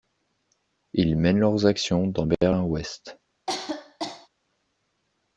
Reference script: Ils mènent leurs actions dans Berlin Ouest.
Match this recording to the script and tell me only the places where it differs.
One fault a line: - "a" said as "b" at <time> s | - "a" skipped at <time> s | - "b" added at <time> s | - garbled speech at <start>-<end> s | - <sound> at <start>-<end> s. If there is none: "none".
- cough at 3.5-4.3 s